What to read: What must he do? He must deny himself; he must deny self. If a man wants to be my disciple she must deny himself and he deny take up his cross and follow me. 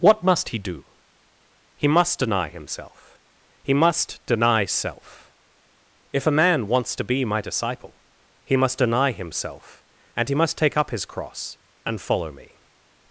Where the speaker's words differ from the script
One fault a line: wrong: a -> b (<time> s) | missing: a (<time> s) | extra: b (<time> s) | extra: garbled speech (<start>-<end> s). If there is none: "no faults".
wrong: she -> he (8.4 s)
wrong: deny -> must (10.3 s)